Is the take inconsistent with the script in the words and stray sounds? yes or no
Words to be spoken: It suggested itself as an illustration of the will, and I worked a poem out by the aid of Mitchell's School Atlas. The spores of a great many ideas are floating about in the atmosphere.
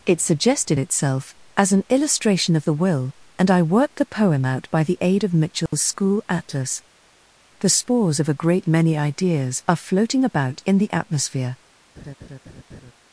yes